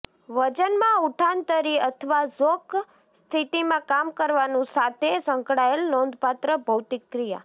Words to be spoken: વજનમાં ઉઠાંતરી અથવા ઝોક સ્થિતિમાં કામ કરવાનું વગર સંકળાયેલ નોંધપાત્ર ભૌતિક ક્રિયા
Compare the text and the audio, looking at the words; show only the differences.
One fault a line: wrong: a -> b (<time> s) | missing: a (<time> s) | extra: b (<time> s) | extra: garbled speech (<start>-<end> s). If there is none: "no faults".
wrong: વગર -> સાથે (4.7 s)